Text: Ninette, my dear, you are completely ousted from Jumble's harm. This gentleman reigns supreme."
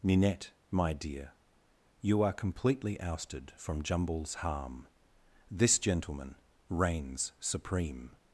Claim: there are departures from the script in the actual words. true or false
false